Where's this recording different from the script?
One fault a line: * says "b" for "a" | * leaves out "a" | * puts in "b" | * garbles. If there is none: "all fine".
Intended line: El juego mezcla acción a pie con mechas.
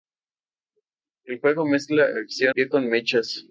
* leaves out "a"